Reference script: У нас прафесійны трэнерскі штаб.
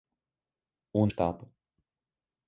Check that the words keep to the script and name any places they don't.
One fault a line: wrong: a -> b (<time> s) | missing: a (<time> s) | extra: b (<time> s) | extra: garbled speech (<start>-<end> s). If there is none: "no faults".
missing: нас прафесійны трэнерскі (1.0 s)